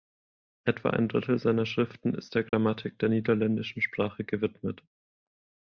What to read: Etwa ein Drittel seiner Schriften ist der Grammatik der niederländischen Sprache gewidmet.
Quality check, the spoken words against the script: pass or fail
pass